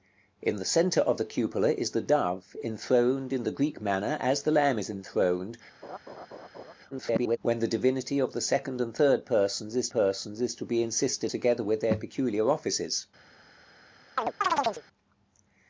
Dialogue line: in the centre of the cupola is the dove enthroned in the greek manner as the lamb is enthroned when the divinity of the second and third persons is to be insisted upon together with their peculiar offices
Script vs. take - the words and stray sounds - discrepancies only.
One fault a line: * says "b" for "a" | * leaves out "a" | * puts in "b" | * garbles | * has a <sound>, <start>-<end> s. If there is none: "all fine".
* has a laugh, 5.8-6.7 s
* garbles
* puts in "persons is"
* leaves out "upon"
* has a chirp, 14.2-14.8 s